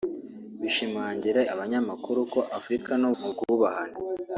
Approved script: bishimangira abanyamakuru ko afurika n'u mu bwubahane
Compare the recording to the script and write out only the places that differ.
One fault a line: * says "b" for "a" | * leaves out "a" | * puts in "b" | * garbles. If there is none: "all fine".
all fine